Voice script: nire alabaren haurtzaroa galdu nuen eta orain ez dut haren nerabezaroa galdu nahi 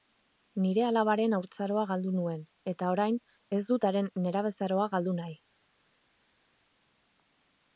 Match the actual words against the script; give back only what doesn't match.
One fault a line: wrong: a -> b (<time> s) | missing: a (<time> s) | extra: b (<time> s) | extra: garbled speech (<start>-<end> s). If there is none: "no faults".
no faults